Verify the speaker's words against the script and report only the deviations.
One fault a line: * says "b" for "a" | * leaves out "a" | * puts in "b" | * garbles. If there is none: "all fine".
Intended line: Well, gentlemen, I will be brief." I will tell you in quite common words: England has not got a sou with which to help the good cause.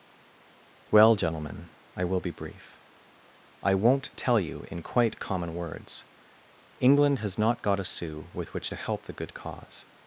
* says "won't" for "will"